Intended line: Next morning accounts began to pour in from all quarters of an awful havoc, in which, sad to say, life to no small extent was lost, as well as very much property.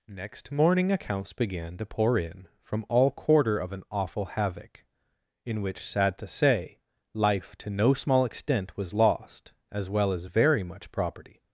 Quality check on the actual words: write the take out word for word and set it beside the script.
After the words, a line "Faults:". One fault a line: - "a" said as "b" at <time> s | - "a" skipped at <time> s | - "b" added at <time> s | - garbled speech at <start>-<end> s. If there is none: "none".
Next morning accounts began to pour in from all quarter of an awful havoc, in which, sad to say, life to no small extent was lost, as well as very much property.
Faults:
- "quarters" said as "quarter" at 3.1 s